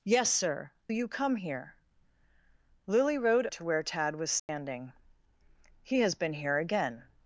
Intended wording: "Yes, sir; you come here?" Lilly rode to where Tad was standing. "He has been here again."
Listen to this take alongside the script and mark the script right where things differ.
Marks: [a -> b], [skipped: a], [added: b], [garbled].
"Yes, sir; you come here?" Lilly rode to where Tad was standing. "He has been here again."